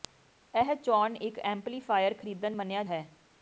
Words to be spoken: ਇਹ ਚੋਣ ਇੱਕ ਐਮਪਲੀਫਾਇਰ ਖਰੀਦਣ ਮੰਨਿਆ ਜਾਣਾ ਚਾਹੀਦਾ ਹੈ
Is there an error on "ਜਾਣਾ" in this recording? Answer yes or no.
yes